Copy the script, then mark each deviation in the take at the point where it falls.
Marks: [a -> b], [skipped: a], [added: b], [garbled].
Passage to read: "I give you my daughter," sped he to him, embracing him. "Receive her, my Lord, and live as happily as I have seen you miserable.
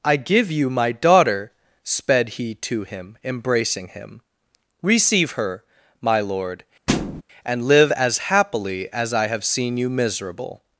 "I give you my daughter," sped he to him, embracing him. "Receive her, my Lord, and live as happily as I have seen you miserable.